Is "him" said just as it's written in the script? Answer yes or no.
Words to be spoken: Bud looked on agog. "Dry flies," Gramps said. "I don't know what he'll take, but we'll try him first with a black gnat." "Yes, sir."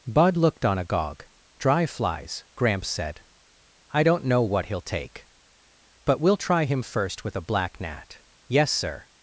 yes